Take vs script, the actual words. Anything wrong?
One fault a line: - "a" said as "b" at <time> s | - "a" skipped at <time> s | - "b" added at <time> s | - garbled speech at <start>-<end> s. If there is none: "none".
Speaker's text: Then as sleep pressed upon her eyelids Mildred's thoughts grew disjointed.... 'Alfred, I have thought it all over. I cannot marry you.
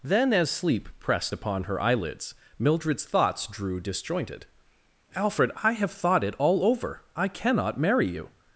- "grew" said as "drew" at 3.5 s